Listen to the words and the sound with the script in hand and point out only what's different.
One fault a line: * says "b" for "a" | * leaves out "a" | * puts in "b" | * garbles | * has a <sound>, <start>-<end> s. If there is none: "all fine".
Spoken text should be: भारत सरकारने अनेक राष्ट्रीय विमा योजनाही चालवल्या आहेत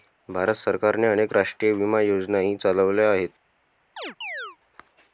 * has a chirp, 4.0-4.6 s